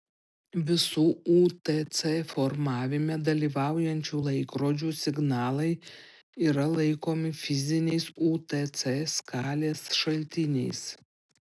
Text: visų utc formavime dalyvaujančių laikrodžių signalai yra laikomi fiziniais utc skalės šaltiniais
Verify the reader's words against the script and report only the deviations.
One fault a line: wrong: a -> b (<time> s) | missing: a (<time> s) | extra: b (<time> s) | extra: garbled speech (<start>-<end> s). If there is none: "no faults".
no faults